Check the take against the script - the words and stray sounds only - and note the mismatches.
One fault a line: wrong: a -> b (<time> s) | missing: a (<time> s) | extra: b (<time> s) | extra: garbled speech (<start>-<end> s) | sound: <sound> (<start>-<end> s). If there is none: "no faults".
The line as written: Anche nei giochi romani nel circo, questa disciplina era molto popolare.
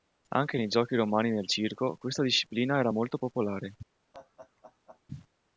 sound: laugh (4.1-5.0 s)